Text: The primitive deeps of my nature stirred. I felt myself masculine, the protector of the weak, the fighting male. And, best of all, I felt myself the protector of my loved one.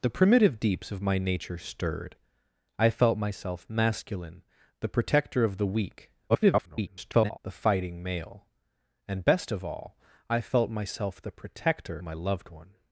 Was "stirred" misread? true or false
false